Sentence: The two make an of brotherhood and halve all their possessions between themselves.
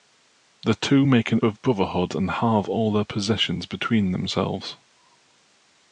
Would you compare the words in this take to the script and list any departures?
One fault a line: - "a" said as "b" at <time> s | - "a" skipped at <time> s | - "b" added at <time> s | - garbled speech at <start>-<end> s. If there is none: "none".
none